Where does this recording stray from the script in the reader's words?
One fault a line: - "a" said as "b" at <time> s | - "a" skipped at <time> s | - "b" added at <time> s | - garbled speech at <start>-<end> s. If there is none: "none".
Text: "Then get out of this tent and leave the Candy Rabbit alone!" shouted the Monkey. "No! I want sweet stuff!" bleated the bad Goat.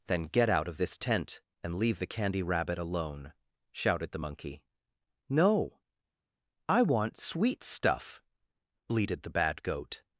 none